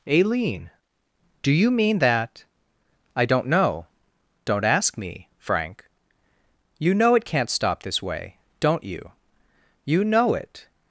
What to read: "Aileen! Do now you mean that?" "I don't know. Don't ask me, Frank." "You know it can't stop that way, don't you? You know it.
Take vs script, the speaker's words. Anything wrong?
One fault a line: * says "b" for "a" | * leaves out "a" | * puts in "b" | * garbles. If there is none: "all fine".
* leaves out "now"
* says "this" for "that"